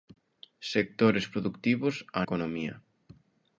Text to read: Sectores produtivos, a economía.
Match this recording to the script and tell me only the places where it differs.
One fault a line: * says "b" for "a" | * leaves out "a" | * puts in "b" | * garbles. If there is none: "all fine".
all fine